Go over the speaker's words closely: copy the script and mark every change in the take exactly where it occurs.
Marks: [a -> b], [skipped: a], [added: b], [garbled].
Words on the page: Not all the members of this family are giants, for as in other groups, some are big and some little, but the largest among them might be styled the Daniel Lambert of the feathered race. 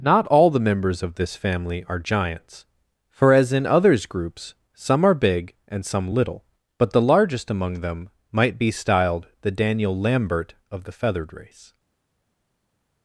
Not all the members of this family are giants, for as in [other -> others] groups, some are big and some little, but the largest among them might be styled the Daniel Lambert of the feathered race.